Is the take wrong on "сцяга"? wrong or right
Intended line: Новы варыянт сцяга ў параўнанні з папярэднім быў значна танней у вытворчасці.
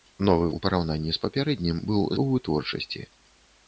wrong